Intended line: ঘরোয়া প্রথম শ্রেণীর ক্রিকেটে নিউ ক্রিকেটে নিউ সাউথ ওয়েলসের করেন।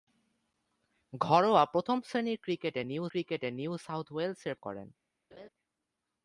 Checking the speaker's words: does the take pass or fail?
pass